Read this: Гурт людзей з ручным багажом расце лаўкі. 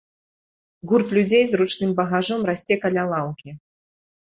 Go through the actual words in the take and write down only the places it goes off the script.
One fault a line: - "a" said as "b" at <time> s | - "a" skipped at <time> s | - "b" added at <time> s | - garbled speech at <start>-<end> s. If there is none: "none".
- "каля" added at 2.9 s